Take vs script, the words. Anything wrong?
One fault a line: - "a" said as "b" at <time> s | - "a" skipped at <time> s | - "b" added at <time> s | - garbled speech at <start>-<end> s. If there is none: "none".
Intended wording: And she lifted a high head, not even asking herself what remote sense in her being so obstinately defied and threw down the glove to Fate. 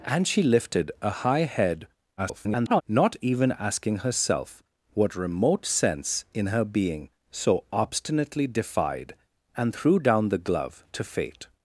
- garbled speech at 2.2-2.8 s